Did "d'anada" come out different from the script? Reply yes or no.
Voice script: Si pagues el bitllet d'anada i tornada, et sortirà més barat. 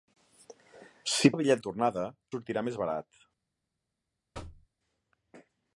yes